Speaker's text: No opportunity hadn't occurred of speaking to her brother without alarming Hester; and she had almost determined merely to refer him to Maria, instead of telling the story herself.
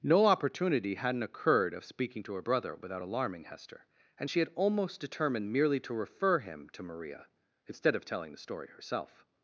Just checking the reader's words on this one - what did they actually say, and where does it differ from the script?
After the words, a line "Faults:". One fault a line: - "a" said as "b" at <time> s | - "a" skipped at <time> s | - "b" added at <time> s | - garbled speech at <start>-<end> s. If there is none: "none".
No opportunity hadn't occurred of speaking to her brother without alarming Hester; and she had almost determined merely to refer him to Maria, instead of telling the story herself.
Faults:
none